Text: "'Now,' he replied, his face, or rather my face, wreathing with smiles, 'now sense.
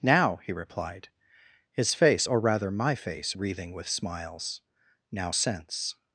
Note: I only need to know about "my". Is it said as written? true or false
true